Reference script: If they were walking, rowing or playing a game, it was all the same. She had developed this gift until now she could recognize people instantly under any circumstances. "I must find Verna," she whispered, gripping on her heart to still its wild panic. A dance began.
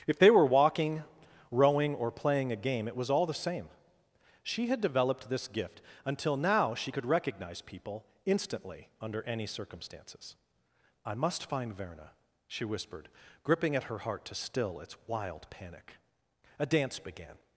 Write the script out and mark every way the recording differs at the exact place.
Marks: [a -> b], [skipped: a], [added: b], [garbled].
If they were walking, rowing or playing a game, it was all the same. She had developed this gift until now she could recognize people instantly under any circumstances. "I must find Verna," she whispered, gripping [on -> at] her heart to still its wild panic. A dance began.